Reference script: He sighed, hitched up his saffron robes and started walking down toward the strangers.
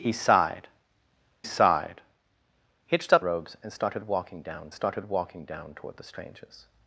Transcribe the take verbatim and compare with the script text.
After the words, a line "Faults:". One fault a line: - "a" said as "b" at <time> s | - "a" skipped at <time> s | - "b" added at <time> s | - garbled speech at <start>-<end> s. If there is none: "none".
He sighed sighed, hitched up robes and started walking down started walking down toward the strangers.
Faults:
- "sighed" added at 1.4 s
- "his saffron robes and" said as "robes and started walking down" at 3.2 s